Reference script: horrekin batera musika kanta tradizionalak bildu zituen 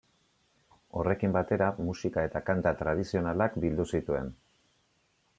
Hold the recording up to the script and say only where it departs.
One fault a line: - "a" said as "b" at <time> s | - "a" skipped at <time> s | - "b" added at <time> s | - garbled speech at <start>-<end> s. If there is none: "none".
- "eta" added at 2.3 s